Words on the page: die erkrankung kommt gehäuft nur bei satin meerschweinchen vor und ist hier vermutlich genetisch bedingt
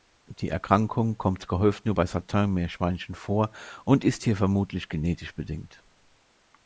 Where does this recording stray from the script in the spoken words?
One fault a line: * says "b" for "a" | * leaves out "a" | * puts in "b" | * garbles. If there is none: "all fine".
all fine